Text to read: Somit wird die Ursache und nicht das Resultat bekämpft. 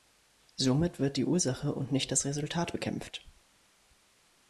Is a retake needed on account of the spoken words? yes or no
no